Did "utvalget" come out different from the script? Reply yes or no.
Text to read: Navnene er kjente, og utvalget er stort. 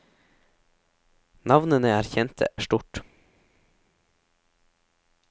yes